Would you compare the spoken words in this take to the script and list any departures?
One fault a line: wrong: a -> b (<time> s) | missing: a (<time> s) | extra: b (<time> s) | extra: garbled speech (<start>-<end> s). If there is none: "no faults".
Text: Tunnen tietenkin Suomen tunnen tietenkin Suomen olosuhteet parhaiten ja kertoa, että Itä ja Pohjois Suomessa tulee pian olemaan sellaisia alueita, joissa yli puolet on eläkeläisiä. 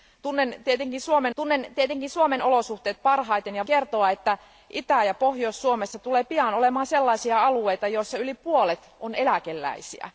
no faults